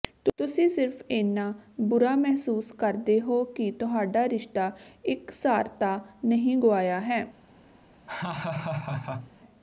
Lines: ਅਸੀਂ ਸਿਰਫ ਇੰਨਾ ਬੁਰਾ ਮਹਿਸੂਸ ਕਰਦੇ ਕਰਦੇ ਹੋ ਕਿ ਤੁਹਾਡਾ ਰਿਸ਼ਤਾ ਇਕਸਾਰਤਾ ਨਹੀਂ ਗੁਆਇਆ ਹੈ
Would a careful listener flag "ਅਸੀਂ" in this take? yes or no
yes